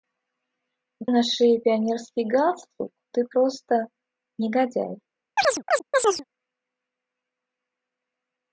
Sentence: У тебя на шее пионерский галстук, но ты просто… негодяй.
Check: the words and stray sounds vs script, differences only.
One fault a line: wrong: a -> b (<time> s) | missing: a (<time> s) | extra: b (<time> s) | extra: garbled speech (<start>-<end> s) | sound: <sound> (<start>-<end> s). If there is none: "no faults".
missing: тебя (1.1 s)
missing: но (2.9 s)
sound: chirp (5.4-6.2 s)